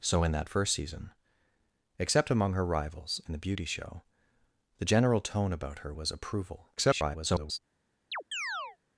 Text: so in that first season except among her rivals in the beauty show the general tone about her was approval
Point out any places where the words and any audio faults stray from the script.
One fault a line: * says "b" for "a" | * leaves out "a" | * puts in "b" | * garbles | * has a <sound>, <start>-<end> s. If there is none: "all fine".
* garbles
* has a chirp, 8.1-8.8 s